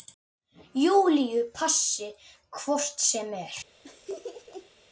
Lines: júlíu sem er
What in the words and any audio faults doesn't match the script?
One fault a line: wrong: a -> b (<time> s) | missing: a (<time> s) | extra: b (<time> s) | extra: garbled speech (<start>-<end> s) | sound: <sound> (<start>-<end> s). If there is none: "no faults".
extra: passi hvort (1.6 s)
sound: laugh (3.8-4.7 s)